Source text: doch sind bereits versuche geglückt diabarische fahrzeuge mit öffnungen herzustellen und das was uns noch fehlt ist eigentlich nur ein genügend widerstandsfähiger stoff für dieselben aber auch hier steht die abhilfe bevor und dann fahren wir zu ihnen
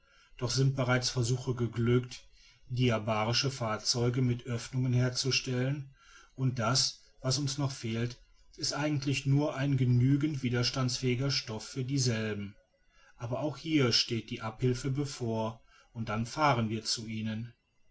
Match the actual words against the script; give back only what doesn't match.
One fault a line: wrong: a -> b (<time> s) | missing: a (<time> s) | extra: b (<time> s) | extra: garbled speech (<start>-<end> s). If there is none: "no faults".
no faults